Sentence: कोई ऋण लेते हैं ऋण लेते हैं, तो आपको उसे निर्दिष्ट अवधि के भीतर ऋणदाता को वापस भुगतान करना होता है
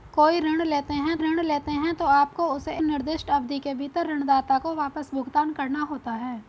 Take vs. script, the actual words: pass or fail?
pass